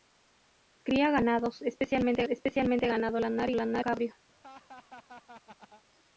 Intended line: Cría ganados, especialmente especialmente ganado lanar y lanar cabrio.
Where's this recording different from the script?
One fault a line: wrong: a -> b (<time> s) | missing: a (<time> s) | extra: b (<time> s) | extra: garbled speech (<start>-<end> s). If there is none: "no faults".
no faults